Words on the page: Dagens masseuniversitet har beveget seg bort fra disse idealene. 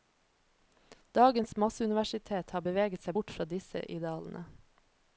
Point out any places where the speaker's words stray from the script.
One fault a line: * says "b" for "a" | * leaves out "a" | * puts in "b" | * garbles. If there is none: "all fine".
all fine